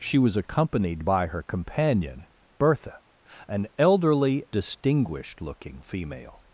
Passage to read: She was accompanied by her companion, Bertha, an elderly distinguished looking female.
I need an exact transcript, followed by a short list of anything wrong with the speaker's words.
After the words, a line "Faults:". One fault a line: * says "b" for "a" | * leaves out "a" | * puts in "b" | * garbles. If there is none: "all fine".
She was accompanied by her companion, Bertha, an elderly distinguished looking female.
Faults:
all fine